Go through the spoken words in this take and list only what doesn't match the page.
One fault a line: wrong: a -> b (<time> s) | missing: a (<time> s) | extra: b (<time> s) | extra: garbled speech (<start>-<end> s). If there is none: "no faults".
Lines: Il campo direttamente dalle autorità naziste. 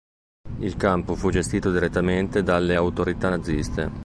extra: fu gestito (1.1 s)